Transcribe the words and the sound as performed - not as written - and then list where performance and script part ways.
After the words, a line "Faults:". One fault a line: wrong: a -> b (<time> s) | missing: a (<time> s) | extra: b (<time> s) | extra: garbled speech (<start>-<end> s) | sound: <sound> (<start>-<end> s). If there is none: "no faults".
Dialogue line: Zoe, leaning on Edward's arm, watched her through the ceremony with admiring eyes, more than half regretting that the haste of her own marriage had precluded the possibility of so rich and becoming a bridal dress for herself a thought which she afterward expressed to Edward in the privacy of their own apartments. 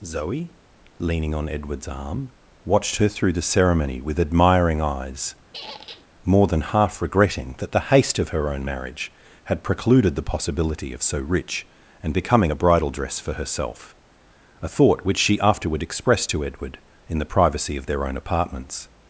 Zoe, leaning on Edward's arm, watched her through the ceremony with admiring eyes, more than half regretting that the haste of her own marriage had precluded the possibility of so rich and becoming a bridal dress for herself a thought which she afterward expressed to Edward in the privacy of their own apartments.
Faults:
sound: squeak (5.5-6.1 s)